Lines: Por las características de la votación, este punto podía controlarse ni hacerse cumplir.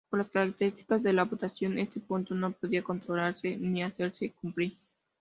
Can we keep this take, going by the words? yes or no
no